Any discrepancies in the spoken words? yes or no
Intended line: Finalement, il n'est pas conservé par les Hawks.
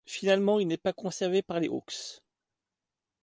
no